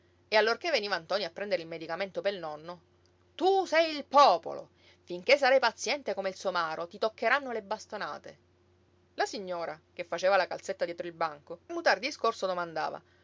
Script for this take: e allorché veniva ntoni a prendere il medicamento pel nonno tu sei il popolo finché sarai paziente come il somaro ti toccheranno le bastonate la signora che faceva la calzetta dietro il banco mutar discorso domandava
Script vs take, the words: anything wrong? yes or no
no